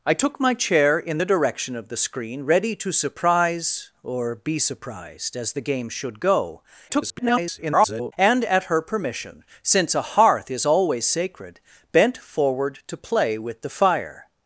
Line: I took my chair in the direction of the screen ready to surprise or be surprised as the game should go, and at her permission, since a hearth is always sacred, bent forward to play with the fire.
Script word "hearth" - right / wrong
right